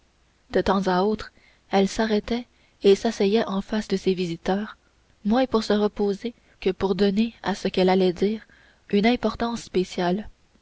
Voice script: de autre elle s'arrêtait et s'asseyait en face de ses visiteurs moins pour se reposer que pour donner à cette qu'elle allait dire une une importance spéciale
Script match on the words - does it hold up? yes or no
no